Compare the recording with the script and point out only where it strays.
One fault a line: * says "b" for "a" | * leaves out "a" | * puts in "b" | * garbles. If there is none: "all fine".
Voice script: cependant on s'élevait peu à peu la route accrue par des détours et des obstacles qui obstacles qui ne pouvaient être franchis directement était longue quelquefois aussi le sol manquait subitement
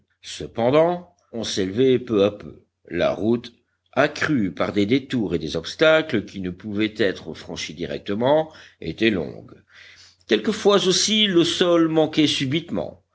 * leaves out "obstacles qui"